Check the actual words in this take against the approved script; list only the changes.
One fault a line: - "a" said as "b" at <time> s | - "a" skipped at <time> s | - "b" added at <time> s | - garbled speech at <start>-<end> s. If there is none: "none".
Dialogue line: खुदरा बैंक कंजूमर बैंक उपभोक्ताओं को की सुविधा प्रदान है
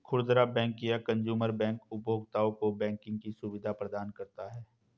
- "या" added at 0.8 s
- "बैंकिंग" added at 2.8 s
- "करता" added at 4.1 s